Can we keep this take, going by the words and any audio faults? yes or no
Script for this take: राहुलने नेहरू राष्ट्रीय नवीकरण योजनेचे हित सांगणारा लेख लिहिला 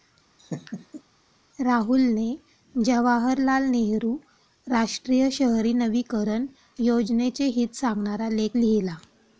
no